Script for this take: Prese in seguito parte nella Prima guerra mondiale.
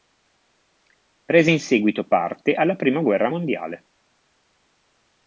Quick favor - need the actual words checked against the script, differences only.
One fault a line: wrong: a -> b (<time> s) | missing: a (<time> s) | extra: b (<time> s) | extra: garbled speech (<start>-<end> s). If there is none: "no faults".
wrong: nella -> alla (2.5 s)